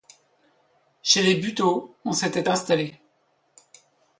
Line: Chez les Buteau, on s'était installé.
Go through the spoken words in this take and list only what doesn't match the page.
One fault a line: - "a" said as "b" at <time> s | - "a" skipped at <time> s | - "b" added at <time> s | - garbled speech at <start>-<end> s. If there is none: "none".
none